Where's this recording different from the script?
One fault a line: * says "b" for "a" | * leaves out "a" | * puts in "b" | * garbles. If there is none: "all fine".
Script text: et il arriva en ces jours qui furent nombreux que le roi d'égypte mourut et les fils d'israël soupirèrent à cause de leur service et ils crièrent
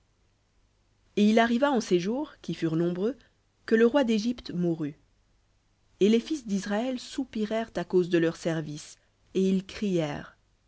all fine